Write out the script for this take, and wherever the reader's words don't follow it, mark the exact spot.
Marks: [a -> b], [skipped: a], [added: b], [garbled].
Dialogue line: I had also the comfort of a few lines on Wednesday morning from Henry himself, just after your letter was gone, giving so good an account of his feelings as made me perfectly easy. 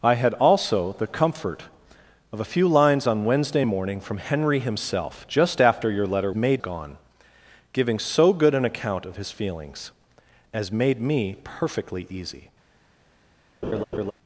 I had also the comfort of a few lines on Wednesday morning from Henry himself, just after your letter [was -> made] gone, giving so good an account of his feelings as made me perfectly easy.